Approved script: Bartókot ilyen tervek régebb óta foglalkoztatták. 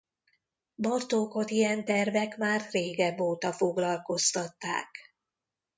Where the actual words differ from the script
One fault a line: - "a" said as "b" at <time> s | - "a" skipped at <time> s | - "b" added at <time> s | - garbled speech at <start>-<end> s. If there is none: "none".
- "már" added at 2.4 s